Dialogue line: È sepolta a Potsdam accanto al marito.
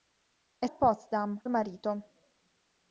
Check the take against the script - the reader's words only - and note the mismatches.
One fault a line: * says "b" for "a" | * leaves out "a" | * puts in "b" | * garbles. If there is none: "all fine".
* leaves out "sepolta"
* leaves out "accanto"